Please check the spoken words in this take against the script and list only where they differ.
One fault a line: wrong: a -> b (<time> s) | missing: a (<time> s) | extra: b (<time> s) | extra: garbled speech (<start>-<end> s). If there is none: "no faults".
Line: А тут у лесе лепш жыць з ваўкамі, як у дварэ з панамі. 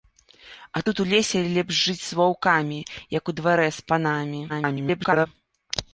extra: garbled speech (4.5-5.3 s)